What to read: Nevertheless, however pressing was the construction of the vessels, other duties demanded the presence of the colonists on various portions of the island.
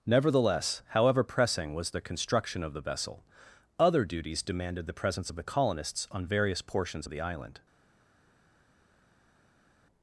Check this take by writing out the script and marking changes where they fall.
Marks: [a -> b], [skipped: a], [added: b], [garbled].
Nevertheless, however pressing was the construction of the [vessels, -> vessel] other duties demanded the presence of the colonists on various portions of the island.